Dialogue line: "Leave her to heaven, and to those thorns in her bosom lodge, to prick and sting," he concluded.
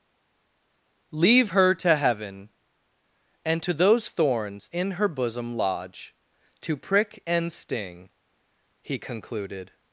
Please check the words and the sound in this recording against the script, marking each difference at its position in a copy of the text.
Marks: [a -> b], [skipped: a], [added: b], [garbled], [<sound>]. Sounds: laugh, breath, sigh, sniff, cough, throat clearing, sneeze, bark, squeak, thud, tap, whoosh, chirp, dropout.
"Leave her to heaven, and to those thorns in her bosom lodge, to prick and sting," he concluded.